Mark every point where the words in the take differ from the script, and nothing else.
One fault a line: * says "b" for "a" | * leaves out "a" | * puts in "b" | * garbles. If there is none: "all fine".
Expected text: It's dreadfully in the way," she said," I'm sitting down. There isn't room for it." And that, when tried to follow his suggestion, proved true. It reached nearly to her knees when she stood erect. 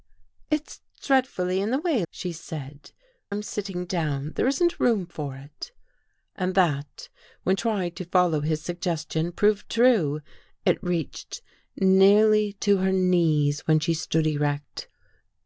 all fine